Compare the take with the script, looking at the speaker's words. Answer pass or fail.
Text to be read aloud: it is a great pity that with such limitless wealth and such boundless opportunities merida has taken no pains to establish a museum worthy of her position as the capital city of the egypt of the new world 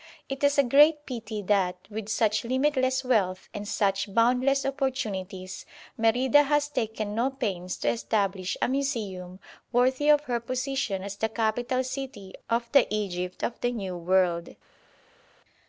pass